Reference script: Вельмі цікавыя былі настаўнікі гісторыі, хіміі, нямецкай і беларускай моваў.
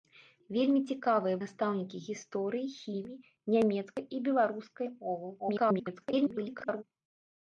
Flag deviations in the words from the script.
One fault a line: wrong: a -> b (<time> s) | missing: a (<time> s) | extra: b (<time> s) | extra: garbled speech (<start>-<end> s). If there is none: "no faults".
missing: былі (1.4 s)
extra: garbled speech (5.4-6.8 s)